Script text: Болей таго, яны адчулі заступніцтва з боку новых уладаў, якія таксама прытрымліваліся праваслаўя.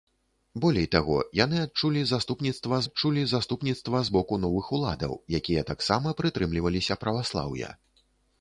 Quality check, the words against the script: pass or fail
fail